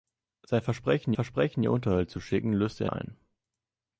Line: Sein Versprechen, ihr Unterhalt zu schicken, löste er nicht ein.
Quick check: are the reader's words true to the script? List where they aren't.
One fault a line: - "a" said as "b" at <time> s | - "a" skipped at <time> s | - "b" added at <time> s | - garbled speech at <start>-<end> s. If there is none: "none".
- "Versprechen" added at 1.1 s
- "nicht" skipped at 2.9 s